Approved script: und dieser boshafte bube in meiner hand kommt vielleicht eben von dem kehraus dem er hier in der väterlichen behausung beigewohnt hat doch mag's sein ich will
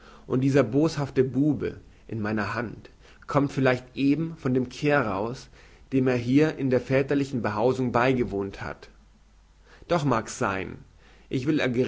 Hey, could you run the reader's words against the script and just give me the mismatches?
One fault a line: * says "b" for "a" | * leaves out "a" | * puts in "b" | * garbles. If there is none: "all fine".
all fine